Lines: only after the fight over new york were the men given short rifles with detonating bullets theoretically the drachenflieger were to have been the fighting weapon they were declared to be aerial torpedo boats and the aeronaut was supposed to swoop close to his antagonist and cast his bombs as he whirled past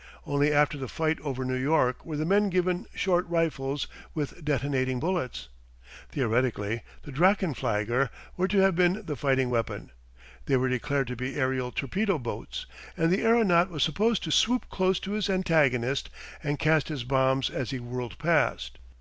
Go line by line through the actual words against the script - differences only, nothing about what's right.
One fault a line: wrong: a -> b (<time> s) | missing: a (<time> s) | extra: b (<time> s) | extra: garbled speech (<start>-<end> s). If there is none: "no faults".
no faults